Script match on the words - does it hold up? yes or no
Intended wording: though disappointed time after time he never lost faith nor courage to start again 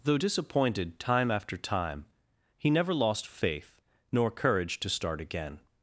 yes